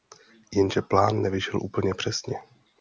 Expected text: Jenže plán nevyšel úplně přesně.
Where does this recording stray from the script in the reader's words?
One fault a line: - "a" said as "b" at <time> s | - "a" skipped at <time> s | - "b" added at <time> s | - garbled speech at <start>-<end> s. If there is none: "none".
none